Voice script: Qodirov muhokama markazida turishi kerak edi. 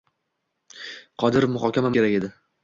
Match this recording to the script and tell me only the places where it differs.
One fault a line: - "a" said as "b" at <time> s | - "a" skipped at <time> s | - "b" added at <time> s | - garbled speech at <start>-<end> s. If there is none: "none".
- "markazida turishi" skipped at 1.9 s